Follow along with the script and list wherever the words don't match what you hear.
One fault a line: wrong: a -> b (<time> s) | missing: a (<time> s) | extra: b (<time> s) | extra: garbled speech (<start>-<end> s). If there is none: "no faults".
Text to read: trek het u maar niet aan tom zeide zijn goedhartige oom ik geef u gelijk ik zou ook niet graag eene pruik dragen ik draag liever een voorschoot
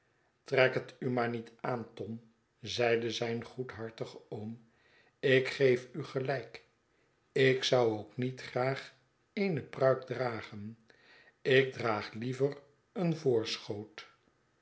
no faults